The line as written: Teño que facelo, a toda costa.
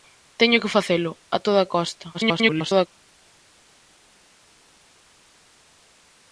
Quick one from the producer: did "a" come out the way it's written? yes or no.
yes